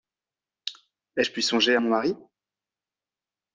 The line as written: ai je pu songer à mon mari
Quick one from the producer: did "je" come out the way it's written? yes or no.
yes